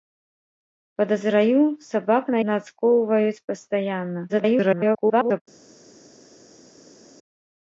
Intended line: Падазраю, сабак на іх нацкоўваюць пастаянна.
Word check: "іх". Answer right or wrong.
wrong